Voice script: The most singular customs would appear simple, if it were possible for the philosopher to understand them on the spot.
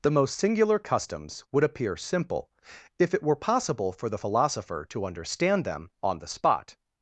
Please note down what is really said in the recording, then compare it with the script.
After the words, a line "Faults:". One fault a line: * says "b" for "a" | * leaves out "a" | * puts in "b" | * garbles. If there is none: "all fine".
The most singular customs would appear simple, if it were possible for the philosopher to understand them on the spot.
Faults:
all fine